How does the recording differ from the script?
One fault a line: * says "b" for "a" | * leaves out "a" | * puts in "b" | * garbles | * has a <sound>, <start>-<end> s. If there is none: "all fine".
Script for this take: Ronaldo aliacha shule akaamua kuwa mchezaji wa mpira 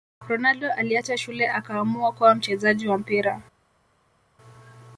all fine